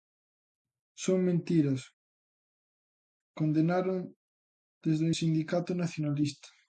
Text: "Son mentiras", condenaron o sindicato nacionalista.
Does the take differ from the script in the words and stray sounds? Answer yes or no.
yes